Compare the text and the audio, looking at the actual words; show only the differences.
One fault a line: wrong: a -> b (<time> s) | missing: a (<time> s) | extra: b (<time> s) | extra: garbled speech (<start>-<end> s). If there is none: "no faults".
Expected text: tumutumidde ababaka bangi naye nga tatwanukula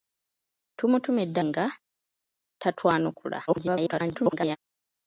missing: ababaka bangi naye (1.4 s)
extra: garbled speech (3.5-4.6 s)